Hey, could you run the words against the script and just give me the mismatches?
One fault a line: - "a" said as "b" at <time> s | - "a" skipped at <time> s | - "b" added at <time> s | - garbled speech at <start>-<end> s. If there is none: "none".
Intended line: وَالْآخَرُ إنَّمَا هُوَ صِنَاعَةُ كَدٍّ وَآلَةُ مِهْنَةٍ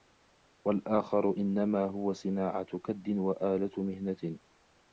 none